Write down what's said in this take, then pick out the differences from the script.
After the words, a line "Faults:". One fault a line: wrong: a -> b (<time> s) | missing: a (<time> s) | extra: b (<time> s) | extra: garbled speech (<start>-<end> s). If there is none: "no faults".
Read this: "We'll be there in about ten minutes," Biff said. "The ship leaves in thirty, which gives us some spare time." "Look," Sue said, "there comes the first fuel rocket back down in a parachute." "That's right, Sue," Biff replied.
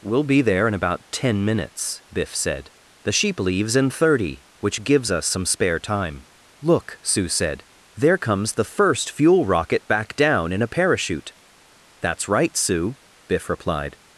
"We'll be there in about ten minutes," Biff said. "The sheep leaves in thirty, which gives us some spare time." "Look," Sue said, "there comes the first fuel rocket back down in a parachute." "That's right, Sue," Biff replied.
Faults:
wrong: ship -> sheep (3.1 s)